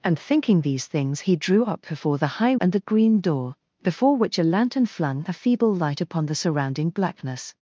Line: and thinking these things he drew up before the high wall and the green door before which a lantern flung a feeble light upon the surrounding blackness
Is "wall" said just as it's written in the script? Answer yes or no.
no